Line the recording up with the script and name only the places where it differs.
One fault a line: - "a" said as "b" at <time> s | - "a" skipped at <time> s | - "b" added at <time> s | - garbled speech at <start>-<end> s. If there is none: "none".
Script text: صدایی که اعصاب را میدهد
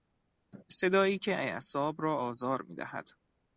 - "آزار" added at 2.1 s